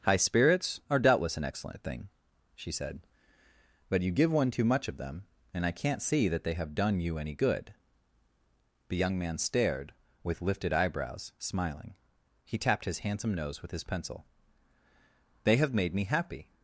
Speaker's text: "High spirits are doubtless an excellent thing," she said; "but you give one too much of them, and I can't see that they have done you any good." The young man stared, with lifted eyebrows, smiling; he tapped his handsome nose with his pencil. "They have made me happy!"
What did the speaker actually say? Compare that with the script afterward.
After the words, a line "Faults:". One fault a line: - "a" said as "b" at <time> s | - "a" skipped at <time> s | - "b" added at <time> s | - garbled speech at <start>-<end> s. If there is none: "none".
"High spirits are doubtless an excellent thing," she said; "but you give one too much of them, and I can't see that they have done you any good." The young man stared, with lifted eyebrows, smiling; he tapped his handsome nose with his pencil. "They have made me happy!"
Faults:
none